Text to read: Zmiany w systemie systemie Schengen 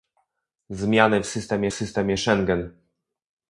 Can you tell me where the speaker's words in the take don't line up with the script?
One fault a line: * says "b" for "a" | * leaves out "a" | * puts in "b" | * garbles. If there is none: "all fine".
all fine